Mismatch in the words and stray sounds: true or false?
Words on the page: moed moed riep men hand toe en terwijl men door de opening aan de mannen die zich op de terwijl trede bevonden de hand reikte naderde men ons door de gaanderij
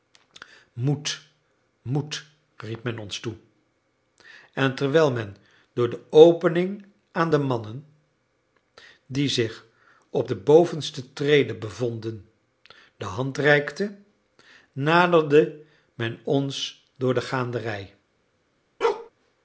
true